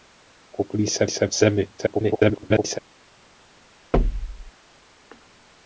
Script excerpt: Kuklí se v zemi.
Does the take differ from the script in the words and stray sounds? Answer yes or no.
yes